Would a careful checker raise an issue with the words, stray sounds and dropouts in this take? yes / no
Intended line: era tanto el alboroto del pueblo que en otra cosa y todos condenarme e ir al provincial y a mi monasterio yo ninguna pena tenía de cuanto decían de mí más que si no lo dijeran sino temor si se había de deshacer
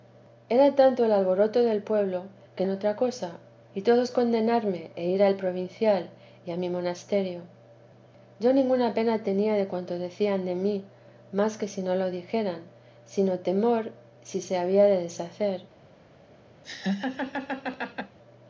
yes